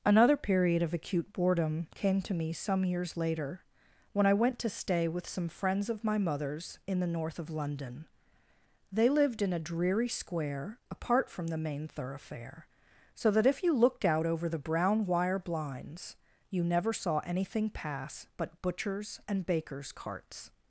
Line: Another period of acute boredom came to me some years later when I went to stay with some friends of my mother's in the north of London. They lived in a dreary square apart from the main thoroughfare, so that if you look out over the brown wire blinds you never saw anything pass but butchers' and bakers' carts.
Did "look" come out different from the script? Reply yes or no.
yes